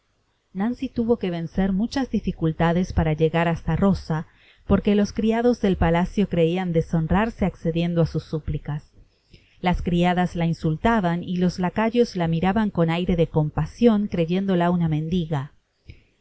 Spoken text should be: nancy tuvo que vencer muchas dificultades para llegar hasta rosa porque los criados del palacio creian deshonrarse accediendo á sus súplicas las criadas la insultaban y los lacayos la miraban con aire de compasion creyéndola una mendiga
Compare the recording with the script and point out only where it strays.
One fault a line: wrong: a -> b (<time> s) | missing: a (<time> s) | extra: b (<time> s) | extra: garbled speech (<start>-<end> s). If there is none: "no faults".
no faults